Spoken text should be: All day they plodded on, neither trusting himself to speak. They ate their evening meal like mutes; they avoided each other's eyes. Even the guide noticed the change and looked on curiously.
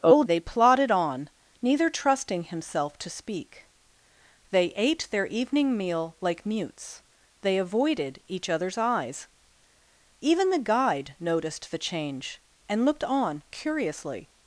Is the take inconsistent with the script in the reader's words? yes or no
yes